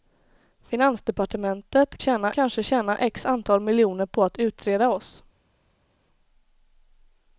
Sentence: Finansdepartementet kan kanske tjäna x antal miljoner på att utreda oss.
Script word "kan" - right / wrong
wrong